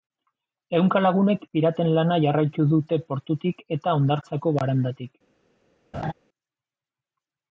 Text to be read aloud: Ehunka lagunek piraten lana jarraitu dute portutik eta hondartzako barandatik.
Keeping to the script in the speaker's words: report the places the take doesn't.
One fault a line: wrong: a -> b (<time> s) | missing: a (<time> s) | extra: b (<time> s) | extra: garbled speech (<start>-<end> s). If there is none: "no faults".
no faults